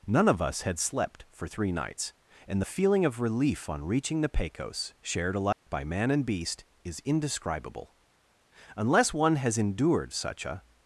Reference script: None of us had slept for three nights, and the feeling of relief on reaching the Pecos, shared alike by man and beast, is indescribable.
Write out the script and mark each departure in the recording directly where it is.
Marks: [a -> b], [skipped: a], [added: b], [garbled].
None of us had slept for three nights, and the feeling of relief on reaching the Pecos, shared alike by man and beast, is indescribable. [added: Unless one has endured such a]